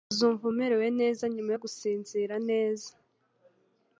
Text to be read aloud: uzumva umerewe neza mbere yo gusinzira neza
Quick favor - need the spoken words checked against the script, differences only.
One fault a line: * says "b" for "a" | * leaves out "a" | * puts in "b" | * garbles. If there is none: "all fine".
* says "nyuma" for "mbere"